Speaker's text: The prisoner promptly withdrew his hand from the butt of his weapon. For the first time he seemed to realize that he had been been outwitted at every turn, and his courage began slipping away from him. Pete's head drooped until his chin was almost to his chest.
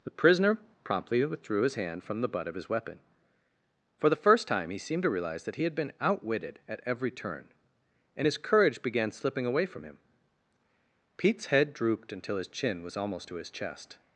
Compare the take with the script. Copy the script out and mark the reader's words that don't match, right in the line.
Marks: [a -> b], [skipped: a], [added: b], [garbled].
The prisoner promptly withdrew his hand from the butt of his weapon. For the first time he seemed to realize that he had been [skipped: been] outwitted at every turn, and his courage began slipping away from him. Pete's head drooped until his chin was almost to his chest.